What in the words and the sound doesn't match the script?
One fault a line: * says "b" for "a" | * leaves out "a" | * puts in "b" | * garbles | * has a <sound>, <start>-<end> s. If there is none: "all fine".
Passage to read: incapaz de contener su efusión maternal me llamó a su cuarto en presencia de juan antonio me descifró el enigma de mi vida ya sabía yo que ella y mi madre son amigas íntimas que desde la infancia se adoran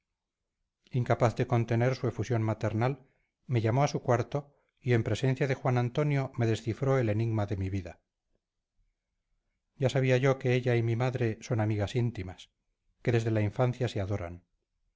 * puts in "y"